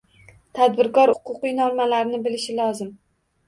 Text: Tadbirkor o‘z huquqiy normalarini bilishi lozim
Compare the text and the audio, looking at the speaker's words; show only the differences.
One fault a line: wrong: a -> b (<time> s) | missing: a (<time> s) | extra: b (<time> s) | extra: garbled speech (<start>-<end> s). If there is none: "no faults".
missing: o‘z (1.1 s)